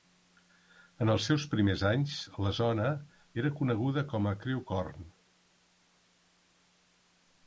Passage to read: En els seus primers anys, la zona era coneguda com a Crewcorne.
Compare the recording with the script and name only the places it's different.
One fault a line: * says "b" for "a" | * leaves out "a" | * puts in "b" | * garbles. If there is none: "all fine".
all fine